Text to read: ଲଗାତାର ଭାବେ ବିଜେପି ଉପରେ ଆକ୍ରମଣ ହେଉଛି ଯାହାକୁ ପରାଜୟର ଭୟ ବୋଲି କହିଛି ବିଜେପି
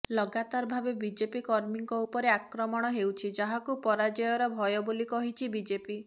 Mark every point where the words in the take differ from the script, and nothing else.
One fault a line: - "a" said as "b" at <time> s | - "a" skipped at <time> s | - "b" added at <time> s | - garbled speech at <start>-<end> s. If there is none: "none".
- "କର୍ମୀଙ୍କ" added at 1.4 s